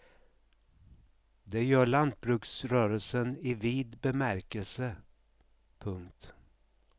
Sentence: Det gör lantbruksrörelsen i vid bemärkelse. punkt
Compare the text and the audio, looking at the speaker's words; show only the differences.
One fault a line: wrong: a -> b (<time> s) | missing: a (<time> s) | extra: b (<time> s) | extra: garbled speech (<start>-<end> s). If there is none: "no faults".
no faults